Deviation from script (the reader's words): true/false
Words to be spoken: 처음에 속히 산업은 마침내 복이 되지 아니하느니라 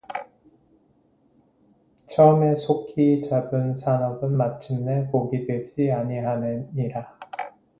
true